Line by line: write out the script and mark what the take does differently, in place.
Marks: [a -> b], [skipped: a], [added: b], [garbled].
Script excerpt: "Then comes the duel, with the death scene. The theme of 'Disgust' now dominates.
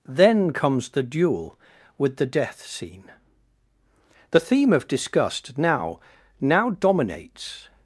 "Then comes the duel, with the death scene. The theme of 'Disgust' now [added: now] dominates.